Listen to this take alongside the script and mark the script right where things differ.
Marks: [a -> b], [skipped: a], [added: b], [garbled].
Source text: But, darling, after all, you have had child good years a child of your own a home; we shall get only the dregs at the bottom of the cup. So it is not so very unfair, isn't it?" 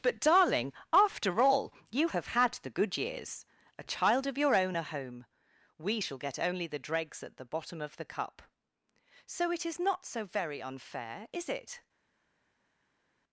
But, darling, after all, you have had [child -> the] good years a child of your own a home; we shall get only the dregs at the bottom of the cup. So it is not so very unfair, [isn't -> is] it?"